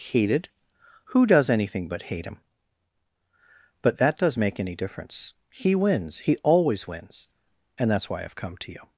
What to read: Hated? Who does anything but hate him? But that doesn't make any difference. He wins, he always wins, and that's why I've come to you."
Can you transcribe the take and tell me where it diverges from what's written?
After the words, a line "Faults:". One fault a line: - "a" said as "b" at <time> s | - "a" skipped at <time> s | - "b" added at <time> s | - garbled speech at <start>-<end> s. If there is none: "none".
Hated? Who does anything but hate him? But that does make any difference. He wins, he always wins, and that's why I've come to you."
Faults:
- "doesn't" said as "does" at 4.2 s